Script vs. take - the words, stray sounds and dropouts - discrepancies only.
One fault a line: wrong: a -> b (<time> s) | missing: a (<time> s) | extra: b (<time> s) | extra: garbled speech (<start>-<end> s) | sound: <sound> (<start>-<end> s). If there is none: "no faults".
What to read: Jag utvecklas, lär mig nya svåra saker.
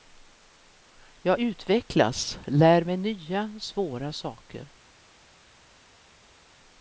no faults